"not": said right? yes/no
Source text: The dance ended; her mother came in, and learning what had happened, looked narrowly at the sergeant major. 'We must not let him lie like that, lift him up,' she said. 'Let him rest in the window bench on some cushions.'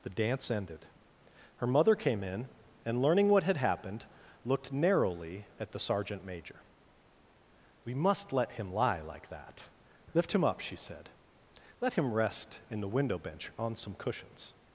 no